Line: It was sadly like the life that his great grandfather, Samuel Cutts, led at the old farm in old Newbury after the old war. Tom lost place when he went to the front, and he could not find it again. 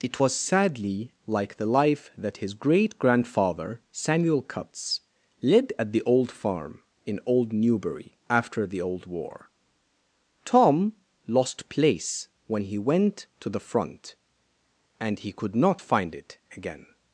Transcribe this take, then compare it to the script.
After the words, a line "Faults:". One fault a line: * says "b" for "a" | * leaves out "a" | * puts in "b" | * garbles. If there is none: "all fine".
It was sadly like the life that his great grandfather, Samuel Cutts, led at the old farm in old Newbury after the old war. Tom lost place when he went to the front, and he could not find it again.
Faults:
all fine